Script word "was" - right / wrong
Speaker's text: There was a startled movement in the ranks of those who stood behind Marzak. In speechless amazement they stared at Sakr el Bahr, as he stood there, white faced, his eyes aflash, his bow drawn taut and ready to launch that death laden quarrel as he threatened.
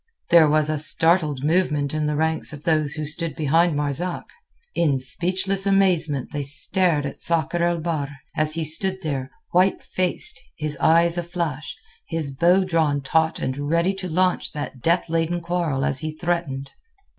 right